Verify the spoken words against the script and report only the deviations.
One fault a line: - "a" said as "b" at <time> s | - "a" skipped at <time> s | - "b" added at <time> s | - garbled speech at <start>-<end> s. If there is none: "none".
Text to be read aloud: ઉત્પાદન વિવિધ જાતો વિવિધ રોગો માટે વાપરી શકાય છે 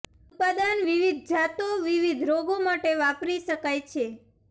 none